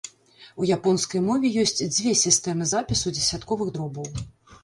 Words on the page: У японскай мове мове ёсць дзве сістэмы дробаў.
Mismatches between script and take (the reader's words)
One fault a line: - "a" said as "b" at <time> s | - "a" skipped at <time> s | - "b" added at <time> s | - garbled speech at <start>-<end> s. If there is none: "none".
- "мове" skipped at 1.5 s
- "запісу дзесятковых" added at 2.7 s